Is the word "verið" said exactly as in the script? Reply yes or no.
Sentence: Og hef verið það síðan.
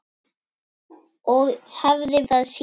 no